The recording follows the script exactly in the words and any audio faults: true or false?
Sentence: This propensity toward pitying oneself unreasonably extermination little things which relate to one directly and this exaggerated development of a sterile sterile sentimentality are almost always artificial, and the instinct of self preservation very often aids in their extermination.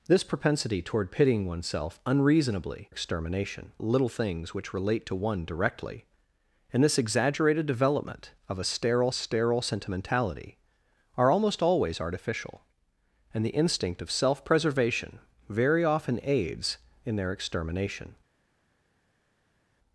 true